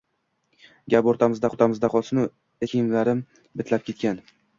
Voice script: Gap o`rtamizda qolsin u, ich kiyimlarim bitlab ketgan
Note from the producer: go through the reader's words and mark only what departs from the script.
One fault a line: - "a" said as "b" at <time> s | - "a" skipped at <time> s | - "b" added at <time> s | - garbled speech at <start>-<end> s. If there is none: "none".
- "o`rtamizda" added at 1.5 s
- "ich" skipped at 2.3 s